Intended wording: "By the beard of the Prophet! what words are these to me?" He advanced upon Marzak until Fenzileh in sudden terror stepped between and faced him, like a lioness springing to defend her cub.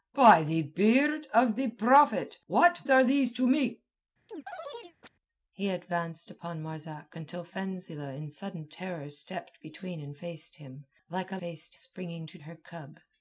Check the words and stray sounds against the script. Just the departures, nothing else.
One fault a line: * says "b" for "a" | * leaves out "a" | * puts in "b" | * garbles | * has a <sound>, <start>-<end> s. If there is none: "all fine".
* leaves out "words"
* has a chirp, 4.3-5.1 s
* says "faced" for "lioness"
* leaves out "defend"